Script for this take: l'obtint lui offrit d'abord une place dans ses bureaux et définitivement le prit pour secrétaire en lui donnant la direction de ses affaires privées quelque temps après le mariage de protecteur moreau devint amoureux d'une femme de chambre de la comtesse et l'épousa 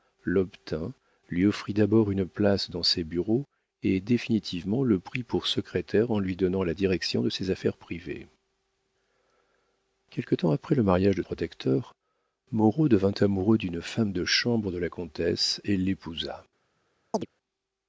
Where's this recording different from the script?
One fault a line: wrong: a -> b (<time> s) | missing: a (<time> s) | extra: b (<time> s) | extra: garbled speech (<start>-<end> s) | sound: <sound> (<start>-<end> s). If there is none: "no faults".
sound: chirp (17.1-17.3 s)